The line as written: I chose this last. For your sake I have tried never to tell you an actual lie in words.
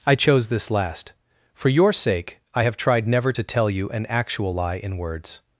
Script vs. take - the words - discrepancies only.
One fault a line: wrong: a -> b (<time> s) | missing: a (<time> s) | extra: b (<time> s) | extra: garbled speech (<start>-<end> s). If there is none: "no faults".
no faults